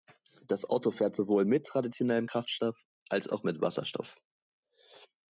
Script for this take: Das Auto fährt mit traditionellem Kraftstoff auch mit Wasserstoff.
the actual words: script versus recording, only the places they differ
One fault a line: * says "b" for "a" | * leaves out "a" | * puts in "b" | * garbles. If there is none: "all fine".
* puts in "sowohl"
* puts in "als"